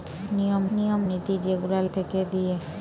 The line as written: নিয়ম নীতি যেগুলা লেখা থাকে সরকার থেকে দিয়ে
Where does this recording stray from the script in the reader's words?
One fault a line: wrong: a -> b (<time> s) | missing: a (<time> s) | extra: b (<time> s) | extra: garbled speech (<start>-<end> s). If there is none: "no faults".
extra: নিয়ম (0.7 s)
missing: লেখা থাকে সরকার (1.8 s)